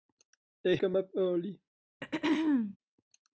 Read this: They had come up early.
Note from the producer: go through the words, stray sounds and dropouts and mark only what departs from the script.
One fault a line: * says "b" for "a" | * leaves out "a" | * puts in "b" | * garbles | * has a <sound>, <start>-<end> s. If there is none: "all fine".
* leaves out "had"
* has a throat clearing, 2.0-2.8 s